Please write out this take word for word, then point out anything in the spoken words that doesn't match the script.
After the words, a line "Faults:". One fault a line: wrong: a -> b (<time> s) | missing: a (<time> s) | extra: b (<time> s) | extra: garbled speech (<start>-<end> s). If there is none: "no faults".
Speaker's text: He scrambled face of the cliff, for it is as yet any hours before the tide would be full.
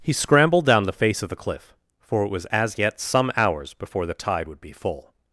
He scrambled down the face of the cliff, for it was as yet some hours before the tide would be full.
Faults:
extra: down the (0.7 s)
wrong: is -> was (2.3 s)
wrong: any -> some (3.0 s)